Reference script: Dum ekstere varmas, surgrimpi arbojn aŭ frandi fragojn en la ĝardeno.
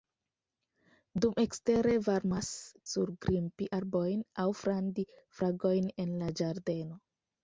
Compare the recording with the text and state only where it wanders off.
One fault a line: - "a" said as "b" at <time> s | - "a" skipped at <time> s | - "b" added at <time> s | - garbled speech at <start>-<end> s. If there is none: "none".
none